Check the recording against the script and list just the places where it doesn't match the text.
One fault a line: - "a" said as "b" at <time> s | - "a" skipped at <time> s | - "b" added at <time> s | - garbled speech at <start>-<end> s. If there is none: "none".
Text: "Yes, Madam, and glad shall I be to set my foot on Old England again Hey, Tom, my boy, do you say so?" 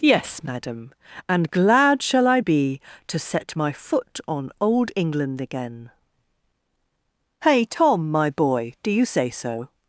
none